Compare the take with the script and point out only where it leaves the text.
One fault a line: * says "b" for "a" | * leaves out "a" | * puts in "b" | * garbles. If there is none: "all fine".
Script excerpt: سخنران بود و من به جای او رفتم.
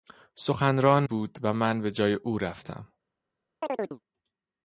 all fine